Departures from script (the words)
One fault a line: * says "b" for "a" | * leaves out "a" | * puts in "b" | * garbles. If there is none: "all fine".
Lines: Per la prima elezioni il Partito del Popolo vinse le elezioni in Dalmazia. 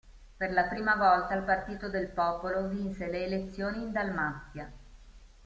* says "volta" for "elezioni"